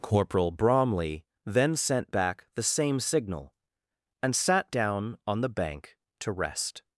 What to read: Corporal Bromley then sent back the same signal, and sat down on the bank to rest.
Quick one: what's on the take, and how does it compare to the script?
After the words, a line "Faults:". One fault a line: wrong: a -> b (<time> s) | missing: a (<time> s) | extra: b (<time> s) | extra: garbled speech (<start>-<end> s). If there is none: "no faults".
Corporal Bromley then sent back the same signal, and sat down on the bank to rest.
Faults:
no faults